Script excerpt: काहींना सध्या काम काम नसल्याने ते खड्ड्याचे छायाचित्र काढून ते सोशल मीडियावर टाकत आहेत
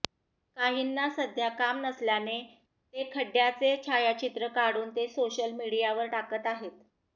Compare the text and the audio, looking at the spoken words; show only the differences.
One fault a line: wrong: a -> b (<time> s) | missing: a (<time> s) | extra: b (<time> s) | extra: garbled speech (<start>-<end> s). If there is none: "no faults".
missing: काम (1.8 s)